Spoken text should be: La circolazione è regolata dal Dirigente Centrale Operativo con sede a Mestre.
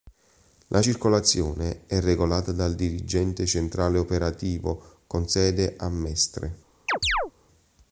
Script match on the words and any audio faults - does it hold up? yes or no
no